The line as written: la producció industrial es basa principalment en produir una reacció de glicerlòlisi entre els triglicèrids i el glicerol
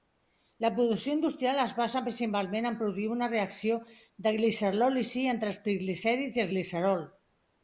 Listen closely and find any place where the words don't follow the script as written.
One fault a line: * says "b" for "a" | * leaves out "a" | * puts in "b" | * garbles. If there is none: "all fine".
all fine